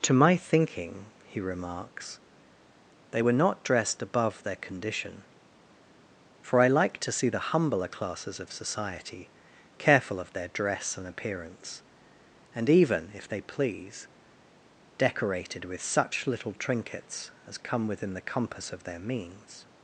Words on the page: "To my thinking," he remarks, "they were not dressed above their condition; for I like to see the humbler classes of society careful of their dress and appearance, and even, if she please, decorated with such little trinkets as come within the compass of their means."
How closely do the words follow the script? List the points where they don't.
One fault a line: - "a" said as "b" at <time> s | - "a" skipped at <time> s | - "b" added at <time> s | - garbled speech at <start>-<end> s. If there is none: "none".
- "she" said as "they" at 13.3 s